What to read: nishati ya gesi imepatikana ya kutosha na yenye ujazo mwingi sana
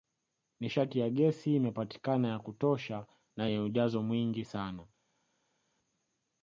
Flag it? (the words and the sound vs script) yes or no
no